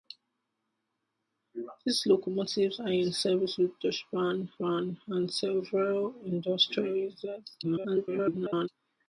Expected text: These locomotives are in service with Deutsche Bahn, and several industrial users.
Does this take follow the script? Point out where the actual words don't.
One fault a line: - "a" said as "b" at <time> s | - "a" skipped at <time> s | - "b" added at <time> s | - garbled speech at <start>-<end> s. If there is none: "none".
- "Bahn" added at 4.6 s
- garbled speech at 7.6-8.7 s